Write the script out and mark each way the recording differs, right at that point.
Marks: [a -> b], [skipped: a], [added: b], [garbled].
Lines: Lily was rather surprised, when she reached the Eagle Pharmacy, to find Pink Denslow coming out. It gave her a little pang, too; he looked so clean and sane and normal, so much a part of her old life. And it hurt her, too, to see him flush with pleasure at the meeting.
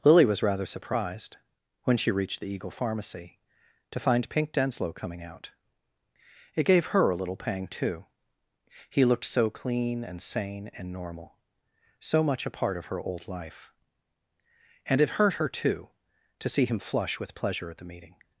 Lily was rather surprised, when she reached the Eagle Pharmacy, to find Pink Denslow coming out. It gave her a little pang, too; he looked so clean and sane and normal, so much a part of her old life. And it hurt her, too, to see him flush with pleasure at the meeting.